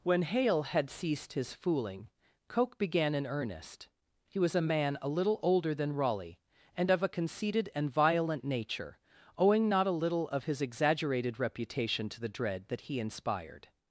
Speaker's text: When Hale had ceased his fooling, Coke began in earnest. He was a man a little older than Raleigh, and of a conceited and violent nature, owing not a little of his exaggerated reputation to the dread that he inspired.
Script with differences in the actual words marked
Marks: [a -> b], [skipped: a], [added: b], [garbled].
When Hale had ceased his fooling, Coke began in earnest. He was a man a little older than Raleigh, and of a conceited and violent nature, owing not a little of his exaggerated reputation to the dread that he inspired.